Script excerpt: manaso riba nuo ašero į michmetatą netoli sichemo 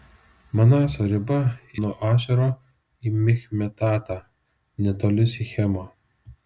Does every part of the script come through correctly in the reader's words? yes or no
yes